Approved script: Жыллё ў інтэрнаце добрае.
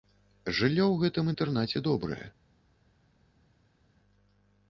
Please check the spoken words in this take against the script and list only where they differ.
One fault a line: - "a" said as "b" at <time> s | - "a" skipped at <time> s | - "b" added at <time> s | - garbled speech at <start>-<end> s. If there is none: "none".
- "гэтым" added at 1.0 s